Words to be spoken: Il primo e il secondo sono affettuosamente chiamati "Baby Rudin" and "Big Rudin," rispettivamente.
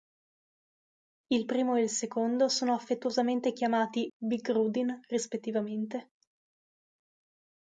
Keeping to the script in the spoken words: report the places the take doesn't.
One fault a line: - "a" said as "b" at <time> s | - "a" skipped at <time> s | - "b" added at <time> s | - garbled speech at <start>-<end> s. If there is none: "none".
- "Baby Rudin and" skipped at 4.1 s